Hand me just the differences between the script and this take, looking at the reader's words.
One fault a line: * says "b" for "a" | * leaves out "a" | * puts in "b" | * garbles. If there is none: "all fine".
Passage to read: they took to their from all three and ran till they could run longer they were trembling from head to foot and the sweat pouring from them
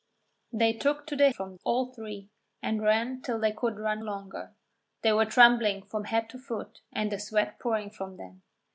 all fine